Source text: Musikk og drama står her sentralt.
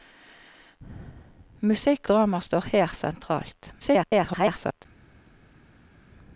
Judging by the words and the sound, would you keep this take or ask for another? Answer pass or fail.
fail